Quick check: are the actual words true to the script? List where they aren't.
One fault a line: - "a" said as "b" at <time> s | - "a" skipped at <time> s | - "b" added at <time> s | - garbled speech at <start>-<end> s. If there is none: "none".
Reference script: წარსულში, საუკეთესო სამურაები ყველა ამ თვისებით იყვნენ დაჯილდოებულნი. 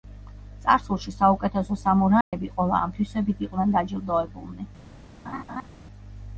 none